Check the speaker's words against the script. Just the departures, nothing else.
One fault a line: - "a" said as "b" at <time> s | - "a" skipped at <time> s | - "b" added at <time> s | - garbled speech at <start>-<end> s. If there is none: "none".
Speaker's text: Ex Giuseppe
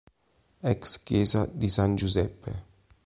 - "chiesa di San" added at 1.0 s